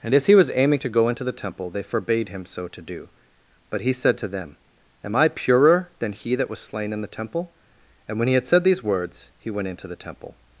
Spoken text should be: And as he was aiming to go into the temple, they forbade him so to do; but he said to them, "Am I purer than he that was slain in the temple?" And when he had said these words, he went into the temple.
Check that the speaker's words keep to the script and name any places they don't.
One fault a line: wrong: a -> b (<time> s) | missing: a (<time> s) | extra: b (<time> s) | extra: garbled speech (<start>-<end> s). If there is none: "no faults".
no faults